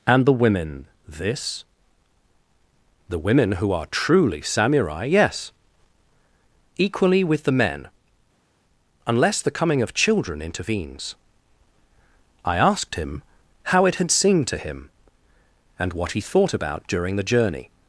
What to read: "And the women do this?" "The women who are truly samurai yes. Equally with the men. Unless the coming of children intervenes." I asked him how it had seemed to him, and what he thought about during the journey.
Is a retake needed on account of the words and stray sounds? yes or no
yes